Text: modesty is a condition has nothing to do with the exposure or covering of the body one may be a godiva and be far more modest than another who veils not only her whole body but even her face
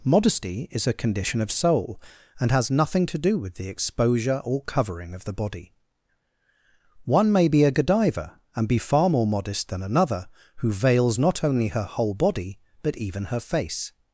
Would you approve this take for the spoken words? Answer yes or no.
no